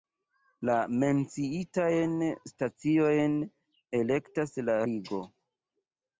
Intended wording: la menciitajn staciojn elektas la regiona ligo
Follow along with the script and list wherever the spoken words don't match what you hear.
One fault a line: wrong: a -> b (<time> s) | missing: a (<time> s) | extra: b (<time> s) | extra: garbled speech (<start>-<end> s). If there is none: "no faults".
missing: regiona (4.8 s)